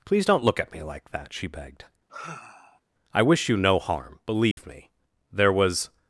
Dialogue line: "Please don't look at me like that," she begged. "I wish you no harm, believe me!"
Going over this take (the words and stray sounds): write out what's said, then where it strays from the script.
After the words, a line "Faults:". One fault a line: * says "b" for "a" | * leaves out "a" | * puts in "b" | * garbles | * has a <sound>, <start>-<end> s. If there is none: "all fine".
"Please don't look at me like that," she begged. "I wish you no harm, believe me!" There was
Faults:
* has a sigh, 2.1-2.8 s
* has a dropout, 4.5-4.6 s
* puts in "There was"